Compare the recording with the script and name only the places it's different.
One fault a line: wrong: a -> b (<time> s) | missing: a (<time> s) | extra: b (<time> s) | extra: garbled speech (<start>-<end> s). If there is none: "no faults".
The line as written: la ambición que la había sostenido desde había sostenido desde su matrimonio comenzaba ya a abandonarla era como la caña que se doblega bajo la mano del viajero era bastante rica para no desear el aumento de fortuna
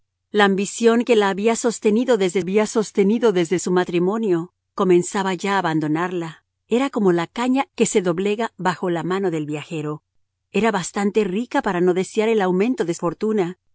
no faults